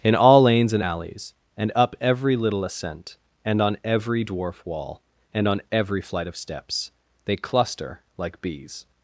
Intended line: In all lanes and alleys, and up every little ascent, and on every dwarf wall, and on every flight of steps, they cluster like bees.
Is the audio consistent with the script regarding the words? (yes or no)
yes